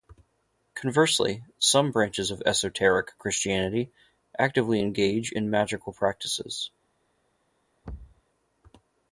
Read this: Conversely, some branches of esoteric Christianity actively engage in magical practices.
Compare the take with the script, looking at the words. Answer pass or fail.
pass